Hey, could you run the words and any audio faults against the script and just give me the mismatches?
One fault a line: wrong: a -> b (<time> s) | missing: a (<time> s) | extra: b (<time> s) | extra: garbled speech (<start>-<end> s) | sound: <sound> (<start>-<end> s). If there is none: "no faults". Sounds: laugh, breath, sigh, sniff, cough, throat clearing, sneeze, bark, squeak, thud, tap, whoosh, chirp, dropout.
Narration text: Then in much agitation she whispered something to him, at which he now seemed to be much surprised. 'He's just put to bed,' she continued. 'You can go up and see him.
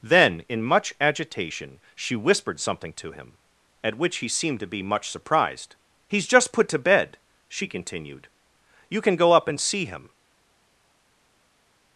missing: now (4.3 s)